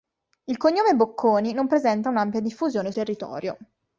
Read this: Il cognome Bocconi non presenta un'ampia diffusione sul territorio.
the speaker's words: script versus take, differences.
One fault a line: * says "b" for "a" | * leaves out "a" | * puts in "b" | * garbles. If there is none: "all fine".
* leaves out "sul"